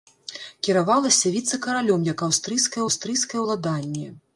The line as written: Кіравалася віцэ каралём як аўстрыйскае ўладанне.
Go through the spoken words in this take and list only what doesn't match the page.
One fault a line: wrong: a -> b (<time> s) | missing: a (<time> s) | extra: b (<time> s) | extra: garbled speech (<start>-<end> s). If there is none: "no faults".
extra: аўстрыйскае (2.9 s)